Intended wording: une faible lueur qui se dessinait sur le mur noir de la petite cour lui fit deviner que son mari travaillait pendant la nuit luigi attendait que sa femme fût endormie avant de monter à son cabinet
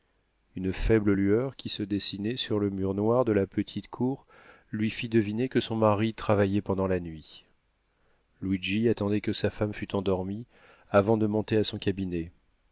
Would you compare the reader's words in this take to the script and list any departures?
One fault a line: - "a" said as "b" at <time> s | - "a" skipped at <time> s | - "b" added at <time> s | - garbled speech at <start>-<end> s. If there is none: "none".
none